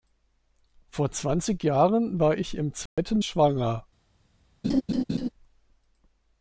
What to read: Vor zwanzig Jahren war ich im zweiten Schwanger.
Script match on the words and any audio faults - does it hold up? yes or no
no